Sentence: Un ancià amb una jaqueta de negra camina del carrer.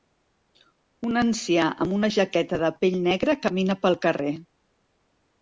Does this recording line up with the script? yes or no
no